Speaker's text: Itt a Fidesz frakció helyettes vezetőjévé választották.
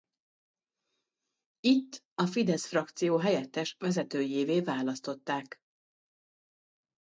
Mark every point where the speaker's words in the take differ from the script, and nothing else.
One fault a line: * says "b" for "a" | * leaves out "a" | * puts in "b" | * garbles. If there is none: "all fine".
all fine